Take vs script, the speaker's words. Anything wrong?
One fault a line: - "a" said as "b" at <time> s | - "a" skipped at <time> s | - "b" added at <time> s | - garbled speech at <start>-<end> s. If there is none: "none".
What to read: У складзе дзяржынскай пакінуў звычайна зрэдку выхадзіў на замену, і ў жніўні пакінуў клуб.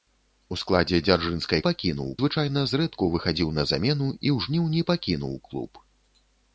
none